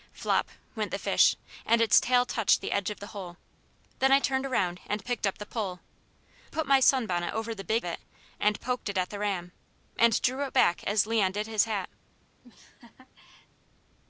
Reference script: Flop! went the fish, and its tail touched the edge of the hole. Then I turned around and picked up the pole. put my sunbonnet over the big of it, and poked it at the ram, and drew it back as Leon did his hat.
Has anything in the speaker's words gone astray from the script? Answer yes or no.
no